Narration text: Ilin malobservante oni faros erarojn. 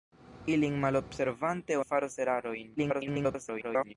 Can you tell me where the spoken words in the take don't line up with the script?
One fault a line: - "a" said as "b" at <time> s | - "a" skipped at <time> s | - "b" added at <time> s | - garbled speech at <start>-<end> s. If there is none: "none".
- "oni" skipped at 1.8 s
- garbled speech at 2.8-3.9 s